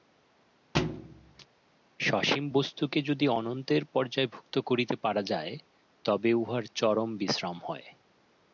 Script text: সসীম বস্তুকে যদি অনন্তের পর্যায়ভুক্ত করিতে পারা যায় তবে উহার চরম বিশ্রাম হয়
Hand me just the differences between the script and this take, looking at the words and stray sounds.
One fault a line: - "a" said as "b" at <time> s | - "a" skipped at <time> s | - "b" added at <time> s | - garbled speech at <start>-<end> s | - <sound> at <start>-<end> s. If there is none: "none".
- thud at 0.7-1.5 s